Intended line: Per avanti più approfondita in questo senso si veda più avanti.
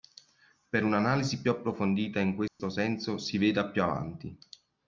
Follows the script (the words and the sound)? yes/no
no